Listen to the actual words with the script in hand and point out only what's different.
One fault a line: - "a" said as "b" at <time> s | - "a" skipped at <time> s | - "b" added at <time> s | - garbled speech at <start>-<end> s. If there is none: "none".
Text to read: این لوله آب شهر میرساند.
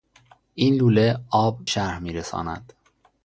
none